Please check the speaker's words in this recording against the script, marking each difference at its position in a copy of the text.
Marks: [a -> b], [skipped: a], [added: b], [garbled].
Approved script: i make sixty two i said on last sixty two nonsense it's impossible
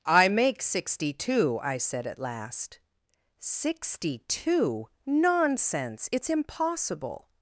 i make sixty two i said [on -> at] last sixty two nonsense it's impossible